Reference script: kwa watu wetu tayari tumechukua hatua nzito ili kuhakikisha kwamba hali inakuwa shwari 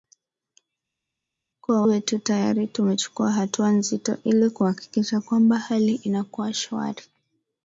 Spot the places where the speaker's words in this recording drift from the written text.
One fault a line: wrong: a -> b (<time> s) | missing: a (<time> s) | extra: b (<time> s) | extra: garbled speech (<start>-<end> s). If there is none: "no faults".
missing: watu (1.8 s)